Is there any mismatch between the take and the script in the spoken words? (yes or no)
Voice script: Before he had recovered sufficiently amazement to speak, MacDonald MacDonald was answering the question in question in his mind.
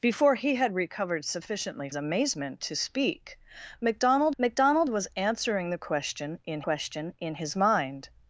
no